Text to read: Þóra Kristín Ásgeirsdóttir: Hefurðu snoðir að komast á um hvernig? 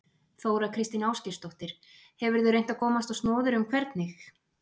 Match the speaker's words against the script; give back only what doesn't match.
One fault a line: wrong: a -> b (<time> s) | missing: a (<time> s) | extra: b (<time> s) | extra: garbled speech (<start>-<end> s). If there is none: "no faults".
wrong: snoðir -> reynt (2.5 s)
extra: snoðir (3.2 s)